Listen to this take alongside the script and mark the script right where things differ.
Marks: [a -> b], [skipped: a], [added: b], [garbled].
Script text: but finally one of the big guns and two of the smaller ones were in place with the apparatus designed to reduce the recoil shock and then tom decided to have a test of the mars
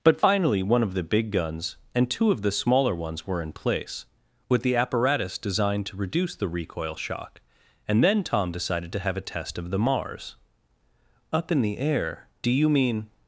but finally one of the big guns and two of the smaller ones were in place with the apparatus designed to reduce the recoil shock and then tom decided to have a test of the mars [added: up in the air do you mean]